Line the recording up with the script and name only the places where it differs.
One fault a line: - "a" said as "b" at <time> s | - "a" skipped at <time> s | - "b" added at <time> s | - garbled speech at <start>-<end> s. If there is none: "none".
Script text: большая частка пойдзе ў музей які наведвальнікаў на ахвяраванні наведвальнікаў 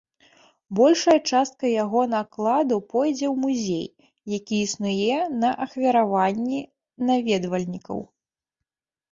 - "яго накладу" added at 1.8 s
- "наведвальнікаў" said as "існуе" at 4.7 s